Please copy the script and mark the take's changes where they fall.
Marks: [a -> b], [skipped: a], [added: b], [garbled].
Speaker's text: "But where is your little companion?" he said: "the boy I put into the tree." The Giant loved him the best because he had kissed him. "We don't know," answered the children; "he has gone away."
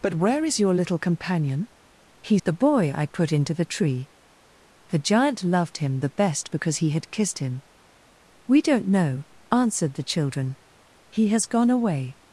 "But where is your little companion?" he [skipped: said:] "the boy I put into the tree." The Giant loved him the best because he had kissed him. "We don't know," answered the children; "he has gone away."